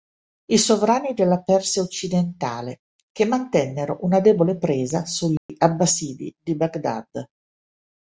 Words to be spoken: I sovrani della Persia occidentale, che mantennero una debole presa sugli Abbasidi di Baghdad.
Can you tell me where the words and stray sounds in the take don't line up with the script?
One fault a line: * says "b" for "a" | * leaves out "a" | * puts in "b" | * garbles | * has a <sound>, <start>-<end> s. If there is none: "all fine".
* has a dropout, 5.4-5.5 s